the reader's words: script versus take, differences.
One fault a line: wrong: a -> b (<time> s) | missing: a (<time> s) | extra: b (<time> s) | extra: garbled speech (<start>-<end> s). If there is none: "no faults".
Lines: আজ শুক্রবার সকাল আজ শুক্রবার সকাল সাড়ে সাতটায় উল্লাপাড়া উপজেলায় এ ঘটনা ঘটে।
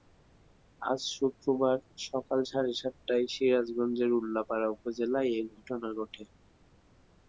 missing: আজ শুক্রবার সকাল (2.4 s)
extra: সিরাজগঞ্জের (3.3 s)